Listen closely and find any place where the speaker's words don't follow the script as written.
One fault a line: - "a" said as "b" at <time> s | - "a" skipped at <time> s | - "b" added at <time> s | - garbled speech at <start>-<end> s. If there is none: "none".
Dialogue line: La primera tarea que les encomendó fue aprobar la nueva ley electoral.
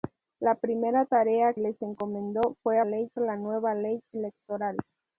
- "que" skipped at 1.5 s
- "aprobar" said as "ley" at 2.8 s